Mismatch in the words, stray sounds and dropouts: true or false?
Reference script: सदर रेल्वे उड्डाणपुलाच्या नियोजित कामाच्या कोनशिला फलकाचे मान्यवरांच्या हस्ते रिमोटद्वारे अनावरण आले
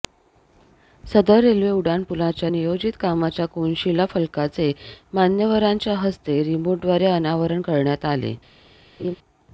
true